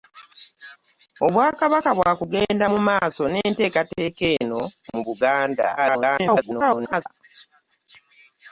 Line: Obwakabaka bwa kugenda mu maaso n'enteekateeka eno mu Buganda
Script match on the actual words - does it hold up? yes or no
no